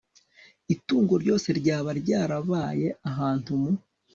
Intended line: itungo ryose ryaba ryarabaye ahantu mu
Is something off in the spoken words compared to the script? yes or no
no